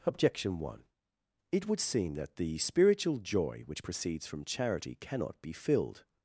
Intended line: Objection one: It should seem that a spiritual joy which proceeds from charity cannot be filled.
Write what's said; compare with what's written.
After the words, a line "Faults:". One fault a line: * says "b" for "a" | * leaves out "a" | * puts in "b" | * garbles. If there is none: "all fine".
Objection one: It would seem that the spiritual joy which proceeds from charity cannot be filled.
Faults:
* says "would" for "should"
* says "the" for "a"